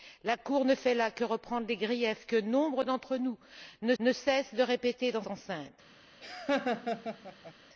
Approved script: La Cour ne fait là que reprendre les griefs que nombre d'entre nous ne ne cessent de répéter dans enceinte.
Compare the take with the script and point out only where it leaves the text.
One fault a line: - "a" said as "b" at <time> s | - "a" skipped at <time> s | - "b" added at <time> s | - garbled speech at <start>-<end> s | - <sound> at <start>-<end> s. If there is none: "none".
- laugh at 6.2-7.5 s